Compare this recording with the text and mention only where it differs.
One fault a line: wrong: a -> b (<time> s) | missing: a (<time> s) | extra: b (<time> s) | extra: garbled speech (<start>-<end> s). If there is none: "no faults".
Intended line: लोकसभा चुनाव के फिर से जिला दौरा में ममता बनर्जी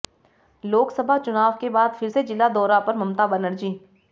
extra: बाद (1.7 s)
wrong: में -> पर (2.8 s)